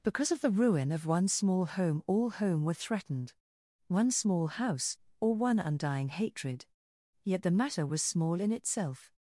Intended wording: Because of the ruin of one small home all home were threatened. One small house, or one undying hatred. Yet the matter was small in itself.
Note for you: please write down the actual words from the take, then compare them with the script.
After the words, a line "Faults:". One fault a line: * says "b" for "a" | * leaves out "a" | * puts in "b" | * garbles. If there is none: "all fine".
Because of the ruin of one small home all home were threatened. One small house, or one undying hatred. Yet the matter was small in itself.
Faults:
all fine